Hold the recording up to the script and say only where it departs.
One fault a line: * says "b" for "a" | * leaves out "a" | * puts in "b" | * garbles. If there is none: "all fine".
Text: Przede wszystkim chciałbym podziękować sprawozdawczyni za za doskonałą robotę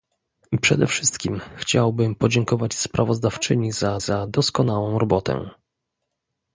all fine